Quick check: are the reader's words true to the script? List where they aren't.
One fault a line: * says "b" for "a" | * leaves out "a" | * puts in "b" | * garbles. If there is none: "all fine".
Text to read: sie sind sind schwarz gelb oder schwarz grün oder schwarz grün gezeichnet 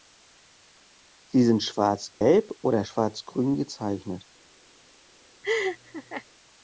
* leaves out "sind"
* leaves out "oder schwarz grün"